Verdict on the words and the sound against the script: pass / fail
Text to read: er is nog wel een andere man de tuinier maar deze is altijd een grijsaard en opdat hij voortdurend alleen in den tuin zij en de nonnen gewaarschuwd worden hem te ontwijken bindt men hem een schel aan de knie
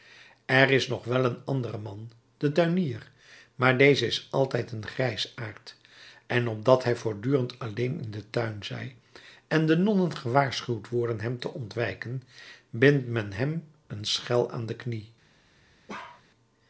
fail